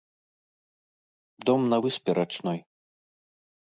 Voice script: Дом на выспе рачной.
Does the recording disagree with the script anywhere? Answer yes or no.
no